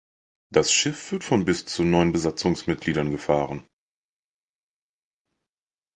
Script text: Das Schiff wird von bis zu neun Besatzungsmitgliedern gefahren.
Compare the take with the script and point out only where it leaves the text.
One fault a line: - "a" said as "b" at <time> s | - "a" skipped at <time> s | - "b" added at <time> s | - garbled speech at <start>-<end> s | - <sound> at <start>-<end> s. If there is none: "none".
none